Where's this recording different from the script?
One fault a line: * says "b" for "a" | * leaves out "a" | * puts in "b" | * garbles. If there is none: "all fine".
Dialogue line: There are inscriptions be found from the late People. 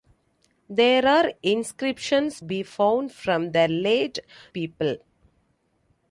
all fine